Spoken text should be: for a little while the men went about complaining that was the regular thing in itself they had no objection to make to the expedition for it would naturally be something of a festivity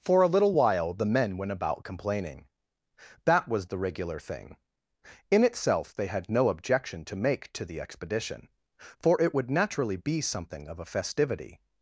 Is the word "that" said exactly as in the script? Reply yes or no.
yes